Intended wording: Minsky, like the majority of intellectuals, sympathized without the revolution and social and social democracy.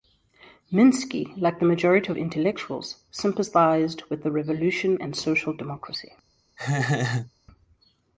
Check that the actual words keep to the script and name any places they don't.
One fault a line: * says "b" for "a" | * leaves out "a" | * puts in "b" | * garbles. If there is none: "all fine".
* says "with" for "without"
* leaves out "and social"